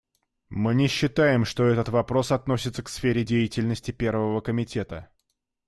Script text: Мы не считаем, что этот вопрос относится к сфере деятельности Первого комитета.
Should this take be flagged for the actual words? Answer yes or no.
no